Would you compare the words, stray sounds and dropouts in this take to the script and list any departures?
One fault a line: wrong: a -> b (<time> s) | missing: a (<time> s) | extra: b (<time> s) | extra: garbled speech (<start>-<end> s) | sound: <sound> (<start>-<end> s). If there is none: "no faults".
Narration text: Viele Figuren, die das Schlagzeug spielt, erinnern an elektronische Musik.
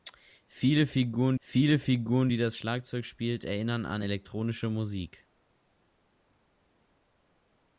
extra: viele Figuren (1.4 s)